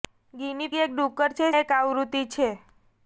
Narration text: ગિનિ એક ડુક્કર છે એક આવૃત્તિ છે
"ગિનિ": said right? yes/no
yes